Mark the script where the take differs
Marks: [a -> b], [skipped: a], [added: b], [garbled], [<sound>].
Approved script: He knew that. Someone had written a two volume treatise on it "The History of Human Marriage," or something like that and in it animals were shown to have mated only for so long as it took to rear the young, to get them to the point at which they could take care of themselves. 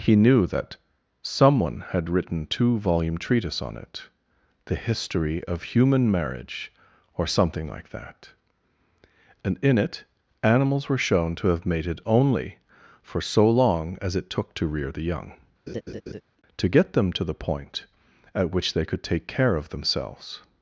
He knew that. Someone had written [skipped: a] two volume treatise on it "The History of Human Marriage," or something like that and in it animals were shown to have mated only for so long as it took to rear the young, [laugh] to get them to the point at which they could take care of themselves.